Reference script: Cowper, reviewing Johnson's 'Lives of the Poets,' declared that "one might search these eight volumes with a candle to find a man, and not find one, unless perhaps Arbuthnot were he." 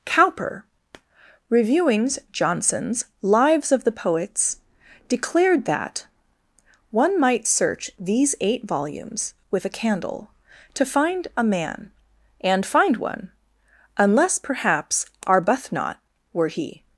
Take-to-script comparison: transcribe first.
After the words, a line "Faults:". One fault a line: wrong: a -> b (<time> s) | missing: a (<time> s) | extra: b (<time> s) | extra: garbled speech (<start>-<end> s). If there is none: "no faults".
Cowper, reviewing Johnson's 'Lives of the Poets,' declared that "one might search these eight volumes with a candle to find a man, and find one, unless perhaps Arbuthnot were he."
Faults:
missing: not (12.6 s)